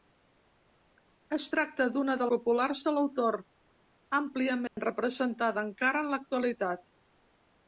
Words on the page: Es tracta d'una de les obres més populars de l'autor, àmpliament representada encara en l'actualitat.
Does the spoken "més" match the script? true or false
false